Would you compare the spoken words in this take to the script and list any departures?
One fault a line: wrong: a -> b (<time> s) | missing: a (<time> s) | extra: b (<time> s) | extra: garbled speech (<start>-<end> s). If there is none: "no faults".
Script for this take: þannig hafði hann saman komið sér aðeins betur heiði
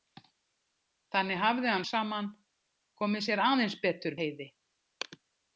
no faults